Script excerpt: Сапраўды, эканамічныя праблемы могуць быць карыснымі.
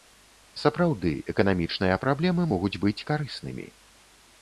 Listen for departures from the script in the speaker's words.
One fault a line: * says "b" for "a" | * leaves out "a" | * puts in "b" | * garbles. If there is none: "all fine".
all fine